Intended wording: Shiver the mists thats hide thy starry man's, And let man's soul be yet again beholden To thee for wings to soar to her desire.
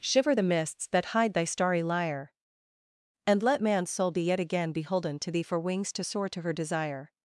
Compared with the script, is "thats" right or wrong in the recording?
wrong